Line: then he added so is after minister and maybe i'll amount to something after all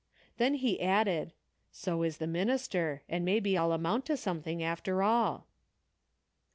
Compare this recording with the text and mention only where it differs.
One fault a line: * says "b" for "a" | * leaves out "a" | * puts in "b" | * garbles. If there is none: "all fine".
* says "the" for "after"